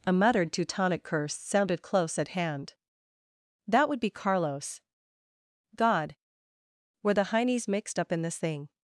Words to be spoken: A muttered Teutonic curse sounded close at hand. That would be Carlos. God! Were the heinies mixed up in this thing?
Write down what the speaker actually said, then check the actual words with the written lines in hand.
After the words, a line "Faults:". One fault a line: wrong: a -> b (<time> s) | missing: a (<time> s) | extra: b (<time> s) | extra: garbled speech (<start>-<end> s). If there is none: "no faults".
A muttered Teutonic curse sounded close at hand. That would be Carlos. God! Were the heinies mixed up in this thing?
Faults:
no faults